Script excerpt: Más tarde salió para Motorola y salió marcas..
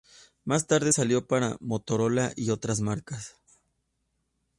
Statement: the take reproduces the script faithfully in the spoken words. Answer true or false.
false